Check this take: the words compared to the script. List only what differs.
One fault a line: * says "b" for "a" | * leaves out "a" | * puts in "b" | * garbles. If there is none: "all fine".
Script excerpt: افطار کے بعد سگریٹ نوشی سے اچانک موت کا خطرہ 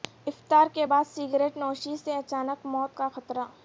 all fine